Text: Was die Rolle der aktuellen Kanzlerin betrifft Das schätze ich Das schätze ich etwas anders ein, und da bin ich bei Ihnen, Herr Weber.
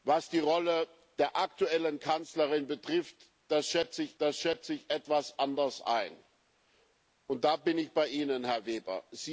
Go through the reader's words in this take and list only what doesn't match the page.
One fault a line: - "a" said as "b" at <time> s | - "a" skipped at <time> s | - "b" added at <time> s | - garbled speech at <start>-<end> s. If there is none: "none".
none